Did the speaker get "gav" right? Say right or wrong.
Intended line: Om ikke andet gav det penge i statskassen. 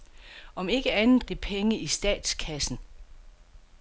wrong